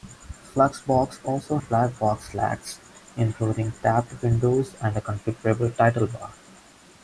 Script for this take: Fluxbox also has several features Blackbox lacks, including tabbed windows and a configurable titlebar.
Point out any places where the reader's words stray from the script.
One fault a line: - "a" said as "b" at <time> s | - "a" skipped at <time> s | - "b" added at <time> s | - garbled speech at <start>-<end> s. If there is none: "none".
- "has several features" skipped at 1.6 s